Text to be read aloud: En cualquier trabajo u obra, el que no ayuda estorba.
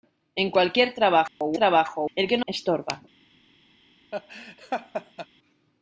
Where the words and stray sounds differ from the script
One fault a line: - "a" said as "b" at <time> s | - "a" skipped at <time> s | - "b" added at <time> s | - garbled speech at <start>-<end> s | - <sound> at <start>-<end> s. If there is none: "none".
- dropout at 1.3-1.4 s
- "obra" said as "trabajo" at 1.5 s
- "ayuda" skipped at 2.5 s
- laugh at 4.1-5.3 s